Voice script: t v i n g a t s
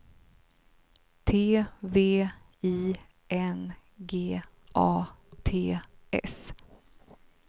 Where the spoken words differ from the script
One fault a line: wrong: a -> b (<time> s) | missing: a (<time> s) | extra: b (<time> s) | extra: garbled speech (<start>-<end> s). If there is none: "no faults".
no faults